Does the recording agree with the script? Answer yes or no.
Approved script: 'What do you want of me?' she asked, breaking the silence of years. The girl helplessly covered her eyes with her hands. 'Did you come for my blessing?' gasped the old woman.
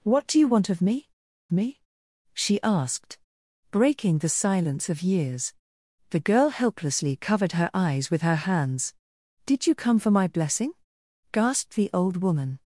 no